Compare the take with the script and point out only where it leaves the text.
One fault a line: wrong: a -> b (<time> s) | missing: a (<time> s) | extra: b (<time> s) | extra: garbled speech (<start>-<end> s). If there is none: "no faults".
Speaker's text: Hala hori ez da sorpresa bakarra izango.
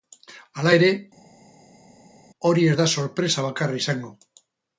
extra: ere (0.7 s)